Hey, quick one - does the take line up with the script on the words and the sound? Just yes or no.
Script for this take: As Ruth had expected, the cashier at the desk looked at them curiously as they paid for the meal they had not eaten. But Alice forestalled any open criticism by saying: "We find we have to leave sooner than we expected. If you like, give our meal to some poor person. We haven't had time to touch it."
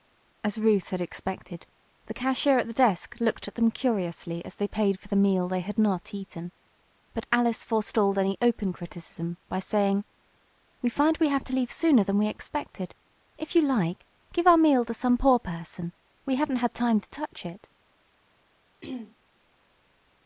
no